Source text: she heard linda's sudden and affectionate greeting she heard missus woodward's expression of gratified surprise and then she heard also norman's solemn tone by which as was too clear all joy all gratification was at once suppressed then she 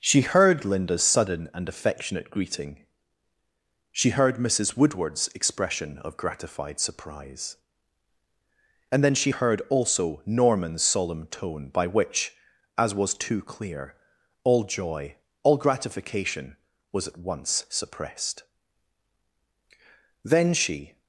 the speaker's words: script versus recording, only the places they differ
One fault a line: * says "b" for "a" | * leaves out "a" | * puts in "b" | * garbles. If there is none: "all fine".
all fine